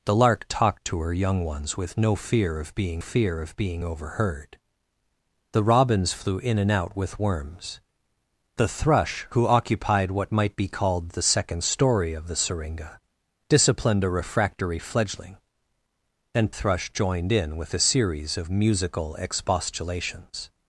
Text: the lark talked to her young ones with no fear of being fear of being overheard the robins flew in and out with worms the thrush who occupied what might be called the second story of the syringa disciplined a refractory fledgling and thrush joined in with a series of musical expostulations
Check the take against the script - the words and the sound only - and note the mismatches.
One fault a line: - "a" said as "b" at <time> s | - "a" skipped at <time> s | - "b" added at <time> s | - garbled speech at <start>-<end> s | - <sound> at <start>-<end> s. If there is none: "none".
none